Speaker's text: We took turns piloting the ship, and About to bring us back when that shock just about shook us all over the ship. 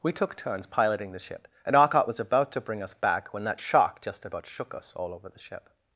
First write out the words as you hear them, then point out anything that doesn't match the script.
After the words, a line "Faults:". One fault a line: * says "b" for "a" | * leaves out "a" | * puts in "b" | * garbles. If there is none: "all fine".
We took turns piloting the ship, and Arcot was about to bring us back when that shock just about shook us all over the ship.
Faults:
* puts in "Arcot was"